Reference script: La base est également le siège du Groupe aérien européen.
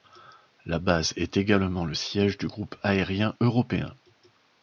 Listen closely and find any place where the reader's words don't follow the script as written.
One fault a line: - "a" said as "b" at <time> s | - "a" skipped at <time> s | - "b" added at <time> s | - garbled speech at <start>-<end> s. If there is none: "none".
none